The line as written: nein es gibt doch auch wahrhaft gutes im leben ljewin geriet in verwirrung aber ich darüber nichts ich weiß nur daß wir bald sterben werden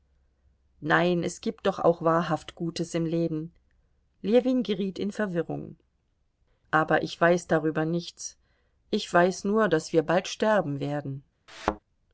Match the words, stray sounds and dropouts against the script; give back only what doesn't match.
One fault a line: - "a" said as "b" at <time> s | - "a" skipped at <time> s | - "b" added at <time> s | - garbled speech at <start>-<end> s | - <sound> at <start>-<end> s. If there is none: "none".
- "weiß" added at 7.2 s
- thud at 11.5-11.8 s